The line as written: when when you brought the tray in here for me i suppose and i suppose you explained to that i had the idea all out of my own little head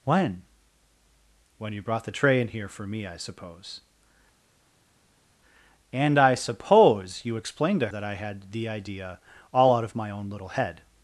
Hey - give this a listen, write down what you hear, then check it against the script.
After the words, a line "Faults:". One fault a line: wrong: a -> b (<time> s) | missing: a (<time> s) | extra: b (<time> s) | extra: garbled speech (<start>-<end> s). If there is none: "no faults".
when when you brought the tray in here for me i suppose and i suppose you explained to that i had the idea all out of my own little head
Faults:
no faults